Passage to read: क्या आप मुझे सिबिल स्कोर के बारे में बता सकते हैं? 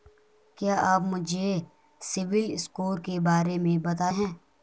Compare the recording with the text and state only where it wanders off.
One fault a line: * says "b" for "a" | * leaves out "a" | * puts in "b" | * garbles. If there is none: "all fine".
* leaves out "सकते"